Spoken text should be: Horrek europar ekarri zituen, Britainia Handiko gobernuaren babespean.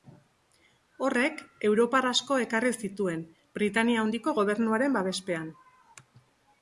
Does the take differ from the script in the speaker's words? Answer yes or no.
yes